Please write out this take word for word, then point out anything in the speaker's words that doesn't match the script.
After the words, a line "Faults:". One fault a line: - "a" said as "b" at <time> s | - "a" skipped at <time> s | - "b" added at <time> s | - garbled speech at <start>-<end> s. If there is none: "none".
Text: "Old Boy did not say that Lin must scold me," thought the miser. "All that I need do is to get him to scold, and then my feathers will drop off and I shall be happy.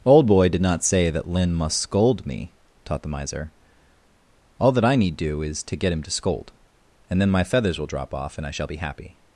"Old Boy did not say that Lin must scold me," taught the miser. "All that I need do is to get him to scold, and then my feathers will drop off and I shall be happy.
Faults:
- "thought" said as "taught" at 2.9 s